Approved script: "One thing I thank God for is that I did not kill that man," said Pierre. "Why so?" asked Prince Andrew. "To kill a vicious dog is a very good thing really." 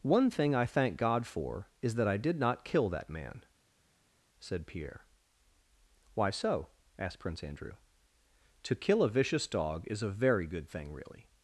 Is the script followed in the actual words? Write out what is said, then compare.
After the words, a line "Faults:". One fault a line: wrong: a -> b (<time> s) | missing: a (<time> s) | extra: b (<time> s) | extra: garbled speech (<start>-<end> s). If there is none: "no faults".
"One thing I thank God for is that I did not kill that man," said Pierre. "Why so?" asked Prince Andrew. "To kill a vicious dog is a very good thing really."
Faults:
no faults